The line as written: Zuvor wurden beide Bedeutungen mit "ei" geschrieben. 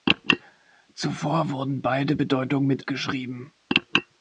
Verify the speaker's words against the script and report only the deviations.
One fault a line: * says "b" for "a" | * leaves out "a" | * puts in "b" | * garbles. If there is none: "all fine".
* leaves out "ei"